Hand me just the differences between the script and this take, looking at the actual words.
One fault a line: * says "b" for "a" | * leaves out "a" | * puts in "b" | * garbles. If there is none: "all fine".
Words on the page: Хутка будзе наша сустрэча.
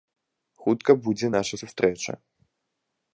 all fine